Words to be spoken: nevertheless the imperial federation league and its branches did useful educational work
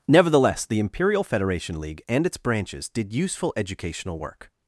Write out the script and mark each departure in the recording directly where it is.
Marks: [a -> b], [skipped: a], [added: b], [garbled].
nevertheless the imperial federation league and its branches did useful educational work